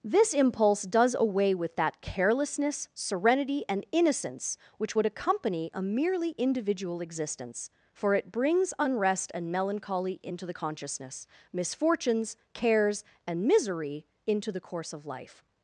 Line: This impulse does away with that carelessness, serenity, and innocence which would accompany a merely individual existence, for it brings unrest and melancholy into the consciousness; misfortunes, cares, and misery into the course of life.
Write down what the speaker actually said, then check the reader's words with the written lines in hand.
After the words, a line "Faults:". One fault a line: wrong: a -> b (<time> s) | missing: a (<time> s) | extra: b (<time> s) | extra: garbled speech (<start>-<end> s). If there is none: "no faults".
This impulse does away with that carelessness, serenity, and innocence which would accompany a merely individual existence, for it brings unrest and melancholy into the consciousness; misfortunes, cares, and misery into the course of life.
Faults:
no faults